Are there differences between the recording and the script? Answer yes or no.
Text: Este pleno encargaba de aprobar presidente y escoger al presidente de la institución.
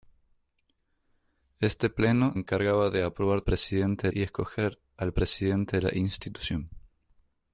no